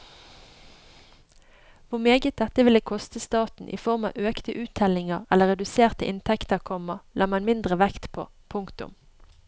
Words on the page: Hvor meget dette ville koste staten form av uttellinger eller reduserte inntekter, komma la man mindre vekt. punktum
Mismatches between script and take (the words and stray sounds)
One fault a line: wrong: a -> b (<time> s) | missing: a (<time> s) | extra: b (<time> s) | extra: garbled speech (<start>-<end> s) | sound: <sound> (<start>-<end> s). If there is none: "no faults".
extra: i (3.7 s)
extra: økte (4.3 s)
extra: på (8.1 s)